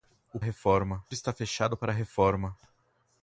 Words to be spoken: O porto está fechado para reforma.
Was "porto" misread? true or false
true